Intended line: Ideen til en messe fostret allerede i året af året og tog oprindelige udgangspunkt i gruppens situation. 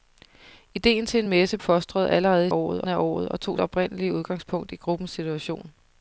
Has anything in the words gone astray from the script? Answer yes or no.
no